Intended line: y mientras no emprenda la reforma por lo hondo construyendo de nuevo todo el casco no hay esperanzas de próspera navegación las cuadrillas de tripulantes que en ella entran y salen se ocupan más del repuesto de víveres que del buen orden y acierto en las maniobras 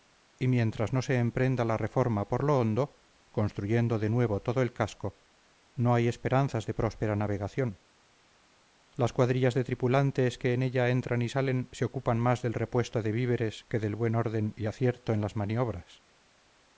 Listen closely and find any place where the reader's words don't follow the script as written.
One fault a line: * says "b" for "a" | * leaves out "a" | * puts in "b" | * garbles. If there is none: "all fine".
* puts in "se"